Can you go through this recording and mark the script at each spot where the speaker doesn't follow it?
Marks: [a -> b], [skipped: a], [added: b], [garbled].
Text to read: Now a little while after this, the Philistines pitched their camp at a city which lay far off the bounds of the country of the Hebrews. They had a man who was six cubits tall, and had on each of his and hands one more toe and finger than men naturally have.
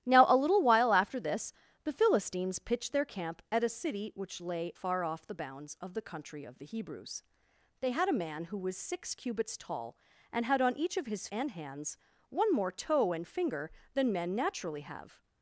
Now a little while after this, the Philistines pitched their camp at a city which lay far off the bounds of the country of the Hebrews. They had a man who was six cubits tall, and had on each of his and hands one more toe and finger than men naturally have.